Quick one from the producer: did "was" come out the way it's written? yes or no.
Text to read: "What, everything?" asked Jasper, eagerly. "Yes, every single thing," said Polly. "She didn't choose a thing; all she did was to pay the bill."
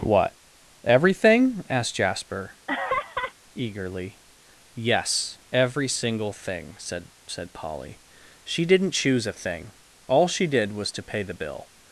yes